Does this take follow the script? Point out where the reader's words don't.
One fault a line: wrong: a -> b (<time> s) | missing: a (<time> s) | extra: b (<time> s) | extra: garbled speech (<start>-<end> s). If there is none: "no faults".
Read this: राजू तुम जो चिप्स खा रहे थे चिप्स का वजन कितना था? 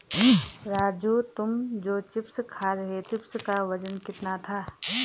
missing: थे (3.0 s)